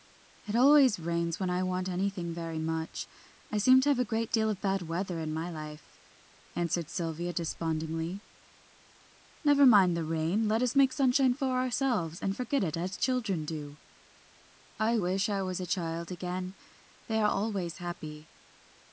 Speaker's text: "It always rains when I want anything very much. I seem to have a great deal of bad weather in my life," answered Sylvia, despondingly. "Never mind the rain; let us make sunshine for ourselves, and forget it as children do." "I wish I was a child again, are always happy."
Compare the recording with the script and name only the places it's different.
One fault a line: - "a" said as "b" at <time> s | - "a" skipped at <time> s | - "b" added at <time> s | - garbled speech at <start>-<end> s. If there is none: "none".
- "they" added at 17.1 s